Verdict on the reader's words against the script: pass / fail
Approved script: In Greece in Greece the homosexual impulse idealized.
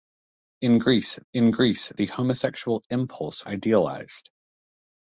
pass